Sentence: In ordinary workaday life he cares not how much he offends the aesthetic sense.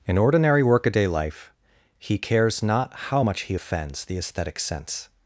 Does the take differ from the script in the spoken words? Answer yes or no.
no